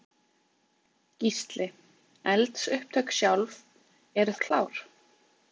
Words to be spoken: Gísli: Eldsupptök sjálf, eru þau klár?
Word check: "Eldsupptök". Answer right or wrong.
right